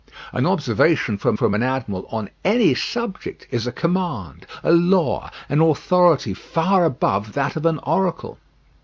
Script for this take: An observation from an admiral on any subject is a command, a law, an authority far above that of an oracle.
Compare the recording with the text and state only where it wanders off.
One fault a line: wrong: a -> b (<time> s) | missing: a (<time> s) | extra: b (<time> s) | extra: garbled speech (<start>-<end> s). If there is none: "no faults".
extra: from (1.4 s)